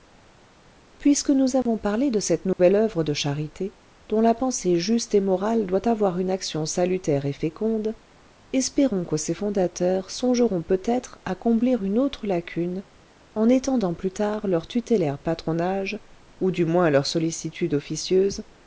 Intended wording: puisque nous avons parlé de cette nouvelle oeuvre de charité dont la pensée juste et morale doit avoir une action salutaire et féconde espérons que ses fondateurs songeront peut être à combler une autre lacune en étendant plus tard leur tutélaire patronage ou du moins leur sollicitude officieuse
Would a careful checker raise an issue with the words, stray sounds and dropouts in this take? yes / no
yes